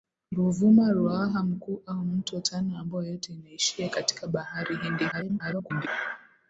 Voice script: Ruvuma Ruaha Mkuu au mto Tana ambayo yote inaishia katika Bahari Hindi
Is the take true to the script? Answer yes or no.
no